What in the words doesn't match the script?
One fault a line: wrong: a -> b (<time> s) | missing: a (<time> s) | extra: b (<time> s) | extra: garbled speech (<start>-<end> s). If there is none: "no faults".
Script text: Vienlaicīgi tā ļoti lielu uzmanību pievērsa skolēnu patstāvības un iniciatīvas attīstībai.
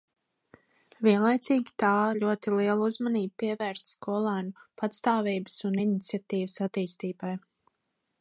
no faults